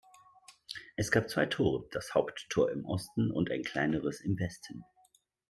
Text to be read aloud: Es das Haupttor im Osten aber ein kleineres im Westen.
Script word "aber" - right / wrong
wrong